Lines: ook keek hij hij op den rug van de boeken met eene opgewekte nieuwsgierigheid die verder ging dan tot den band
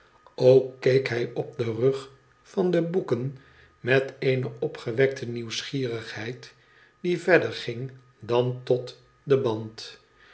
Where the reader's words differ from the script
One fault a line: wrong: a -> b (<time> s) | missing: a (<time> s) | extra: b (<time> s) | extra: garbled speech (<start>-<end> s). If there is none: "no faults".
missing: hij (1.3 s)